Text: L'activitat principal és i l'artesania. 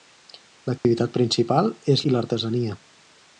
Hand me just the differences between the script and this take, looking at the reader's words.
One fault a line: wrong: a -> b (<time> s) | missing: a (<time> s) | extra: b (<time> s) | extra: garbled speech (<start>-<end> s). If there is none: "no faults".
no faults